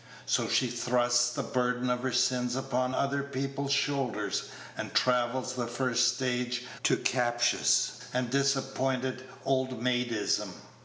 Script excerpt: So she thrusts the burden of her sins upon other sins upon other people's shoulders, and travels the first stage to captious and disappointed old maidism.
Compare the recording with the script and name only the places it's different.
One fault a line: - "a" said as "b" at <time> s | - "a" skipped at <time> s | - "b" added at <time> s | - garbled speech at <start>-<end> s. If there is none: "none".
- "sins upon other" skipped at 3.2 s